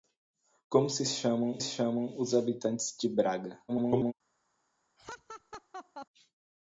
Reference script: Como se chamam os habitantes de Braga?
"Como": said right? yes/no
yes